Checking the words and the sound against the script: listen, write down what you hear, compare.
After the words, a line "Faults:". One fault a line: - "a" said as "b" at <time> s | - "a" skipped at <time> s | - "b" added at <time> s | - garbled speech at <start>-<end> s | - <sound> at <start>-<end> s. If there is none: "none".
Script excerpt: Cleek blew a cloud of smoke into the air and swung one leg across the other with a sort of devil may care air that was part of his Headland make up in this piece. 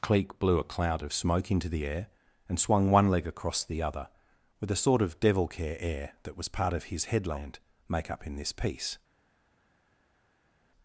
Cleek blew a cloud of smoke into the air and swung one leg across the other with a sort of devil care air that was part of his Headland make up in this piece.
Faults:
- "may" skipped at 5.5 s